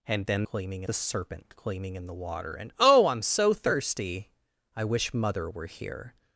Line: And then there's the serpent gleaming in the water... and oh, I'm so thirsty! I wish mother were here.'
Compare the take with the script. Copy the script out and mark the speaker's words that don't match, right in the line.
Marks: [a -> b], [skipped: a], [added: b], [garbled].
And then [there's -> gleaming] the serpent gleaming in the water... and oh, I'm so thirsty! I wish mother were here.'